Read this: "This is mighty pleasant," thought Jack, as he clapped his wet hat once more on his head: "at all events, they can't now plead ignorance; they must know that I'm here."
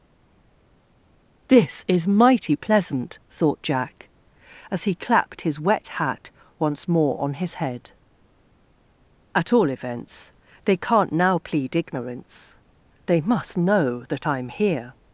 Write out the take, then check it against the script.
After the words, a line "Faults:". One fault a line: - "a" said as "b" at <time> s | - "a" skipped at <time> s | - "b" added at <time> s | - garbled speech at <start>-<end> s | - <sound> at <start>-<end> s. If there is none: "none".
"This is mighty pleasant," thought Jack, as he clapped his wet hat once more on his head: "at all events, they can't now plead ignorance; they must know that I'm here."
Faults:
none